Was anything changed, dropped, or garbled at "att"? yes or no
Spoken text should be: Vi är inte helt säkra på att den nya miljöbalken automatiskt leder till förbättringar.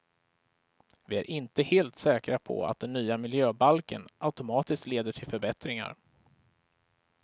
no